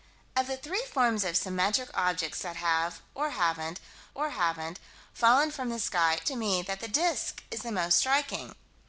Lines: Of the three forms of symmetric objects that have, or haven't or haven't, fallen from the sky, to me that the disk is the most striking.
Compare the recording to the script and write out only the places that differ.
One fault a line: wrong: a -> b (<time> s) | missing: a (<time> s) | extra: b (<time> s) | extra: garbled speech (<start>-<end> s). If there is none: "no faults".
no faults